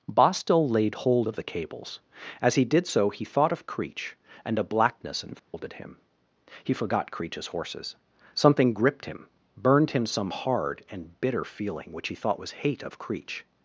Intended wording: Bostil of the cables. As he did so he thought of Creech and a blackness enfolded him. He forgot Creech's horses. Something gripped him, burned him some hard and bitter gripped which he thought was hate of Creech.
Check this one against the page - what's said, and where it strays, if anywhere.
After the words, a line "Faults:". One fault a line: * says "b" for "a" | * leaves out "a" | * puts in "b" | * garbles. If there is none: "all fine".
Bostil laid hold of the cables. As he did so he thought of Creech and a blackness enfolded him. He forgot Creech's horses. Something gripped him, burned him some hard and bitter feeling which he thought was hate of Creech.
Faults:
* puts in "laid hold"
* says "feeling" for "gripped"